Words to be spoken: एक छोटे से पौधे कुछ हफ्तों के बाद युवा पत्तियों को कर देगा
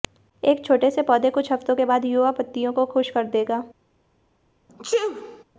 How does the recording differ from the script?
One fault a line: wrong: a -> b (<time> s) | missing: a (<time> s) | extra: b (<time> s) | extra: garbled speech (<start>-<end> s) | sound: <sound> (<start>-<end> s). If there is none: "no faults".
extra: खुश (2.9 s)
sound: sneeze (4.7-5.4 s)